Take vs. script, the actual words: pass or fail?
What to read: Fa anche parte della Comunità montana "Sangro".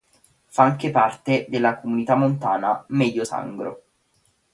fail